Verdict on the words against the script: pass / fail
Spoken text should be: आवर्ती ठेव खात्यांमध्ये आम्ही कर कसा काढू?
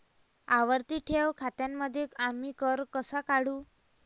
pass